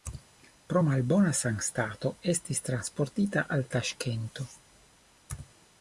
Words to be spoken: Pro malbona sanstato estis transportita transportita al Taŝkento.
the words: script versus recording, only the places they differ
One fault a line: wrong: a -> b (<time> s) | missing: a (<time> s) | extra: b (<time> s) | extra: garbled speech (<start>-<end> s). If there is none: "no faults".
missing: transportita (3.5 s)